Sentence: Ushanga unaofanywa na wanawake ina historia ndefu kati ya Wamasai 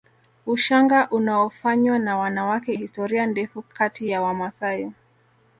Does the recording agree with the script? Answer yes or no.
no